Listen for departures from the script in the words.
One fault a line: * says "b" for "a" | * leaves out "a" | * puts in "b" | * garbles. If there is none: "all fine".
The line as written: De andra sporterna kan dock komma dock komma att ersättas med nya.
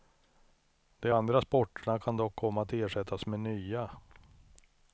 * leaves out "dock komma"